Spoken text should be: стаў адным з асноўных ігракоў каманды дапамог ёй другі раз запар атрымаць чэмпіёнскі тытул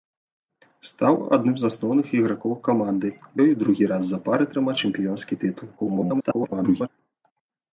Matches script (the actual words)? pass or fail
fail